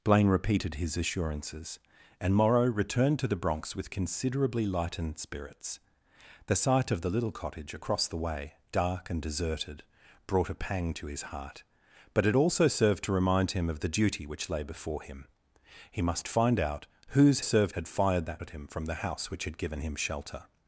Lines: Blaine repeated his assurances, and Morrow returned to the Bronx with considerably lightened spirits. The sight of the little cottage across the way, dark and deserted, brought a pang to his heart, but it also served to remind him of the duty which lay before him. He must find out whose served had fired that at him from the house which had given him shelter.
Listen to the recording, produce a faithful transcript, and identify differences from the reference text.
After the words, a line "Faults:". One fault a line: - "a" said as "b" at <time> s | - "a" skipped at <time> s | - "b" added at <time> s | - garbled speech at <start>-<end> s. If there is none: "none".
Blaine repeated his assurances, and Morrow returned to the Bronx with considerably lightened spirits. The sight of the little cottage across the way, dark and deserted, brought a pang to his heart, but it also served to remind him of the duty which lay before him. He must find out whose served had fired that at him from the house which had given him shelter.
Faults:
none